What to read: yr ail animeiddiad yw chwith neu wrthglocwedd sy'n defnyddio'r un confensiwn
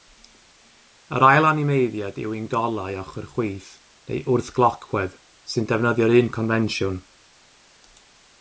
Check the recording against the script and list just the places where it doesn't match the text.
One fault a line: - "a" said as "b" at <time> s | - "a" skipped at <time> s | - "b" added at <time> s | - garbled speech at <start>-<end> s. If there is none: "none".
- "un golau ochr" added at 2.4 s